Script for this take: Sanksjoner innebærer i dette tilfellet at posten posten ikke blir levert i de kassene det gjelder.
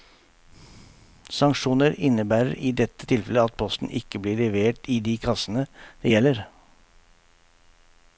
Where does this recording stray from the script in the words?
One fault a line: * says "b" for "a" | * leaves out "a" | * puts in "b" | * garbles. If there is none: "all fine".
* leaves out "posten"